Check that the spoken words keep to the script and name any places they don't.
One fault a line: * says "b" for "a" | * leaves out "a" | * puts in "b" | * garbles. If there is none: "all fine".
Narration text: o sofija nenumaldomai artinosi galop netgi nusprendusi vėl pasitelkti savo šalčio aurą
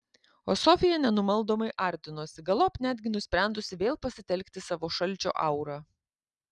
all fine